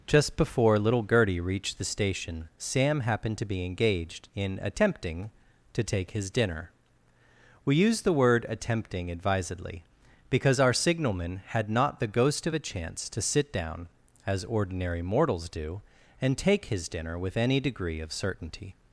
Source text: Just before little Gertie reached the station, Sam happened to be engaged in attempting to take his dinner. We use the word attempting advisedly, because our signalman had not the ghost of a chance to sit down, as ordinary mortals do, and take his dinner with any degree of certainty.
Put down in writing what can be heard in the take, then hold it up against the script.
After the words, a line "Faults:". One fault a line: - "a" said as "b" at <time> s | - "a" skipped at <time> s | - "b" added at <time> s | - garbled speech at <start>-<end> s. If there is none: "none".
Just before little Gertie reached the station, Sam happened to be engaged in attempting to take his dinner. We use the word attempting advisedly, because our signalman had not the ghost of a chance to sit down, as ordinary mortals do, and take his dinner with any degree of certainty.
Faults:
none